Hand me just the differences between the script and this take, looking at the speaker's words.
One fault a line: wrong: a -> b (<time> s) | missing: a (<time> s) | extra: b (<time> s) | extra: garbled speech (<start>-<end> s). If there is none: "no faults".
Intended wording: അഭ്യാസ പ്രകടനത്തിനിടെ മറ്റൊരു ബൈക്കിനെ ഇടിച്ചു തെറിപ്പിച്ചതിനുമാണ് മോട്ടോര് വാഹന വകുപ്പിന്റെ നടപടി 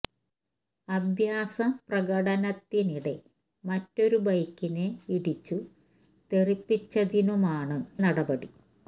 missing: മോട്ടോര് വാഹന വകുപ്പിന്റെ (7.8 s)